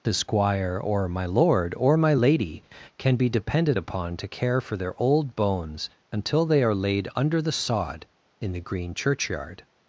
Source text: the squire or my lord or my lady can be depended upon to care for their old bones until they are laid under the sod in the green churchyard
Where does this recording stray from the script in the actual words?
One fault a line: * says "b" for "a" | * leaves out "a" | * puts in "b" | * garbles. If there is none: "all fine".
all fine